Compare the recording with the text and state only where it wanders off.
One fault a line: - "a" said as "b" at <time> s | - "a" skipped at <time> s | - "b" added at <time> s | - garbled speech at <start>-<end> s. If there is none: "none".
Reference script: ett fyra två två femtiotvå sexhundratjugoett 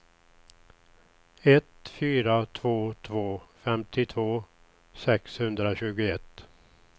none